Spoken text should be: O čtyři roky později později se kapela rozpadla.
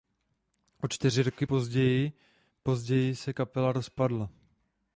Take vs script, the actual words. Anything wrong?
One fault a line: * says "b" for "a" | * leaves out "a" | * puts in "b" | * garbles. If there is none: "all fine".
all fine